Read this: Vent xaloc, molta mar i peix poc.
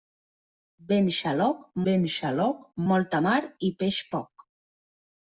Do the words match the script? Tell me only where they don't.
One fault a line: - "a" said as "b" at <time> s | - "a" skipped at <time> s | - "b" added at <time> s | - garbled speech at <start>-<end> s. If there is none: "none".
- "vent xaloc" added at 1.9 s